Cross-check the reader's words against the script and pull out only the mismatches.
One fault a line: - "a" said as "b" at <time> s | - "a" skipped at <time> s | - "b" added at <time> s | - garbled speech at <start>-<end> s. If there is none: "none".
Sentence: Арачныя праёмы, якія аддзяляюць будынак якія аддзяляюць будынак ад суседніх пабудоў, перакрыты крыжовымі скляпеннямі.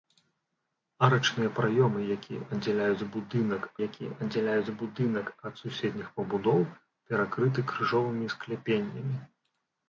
none